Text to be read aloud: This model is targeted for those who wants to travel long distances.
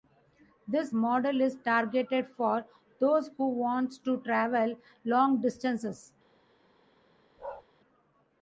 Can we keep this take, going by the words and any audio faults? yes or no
no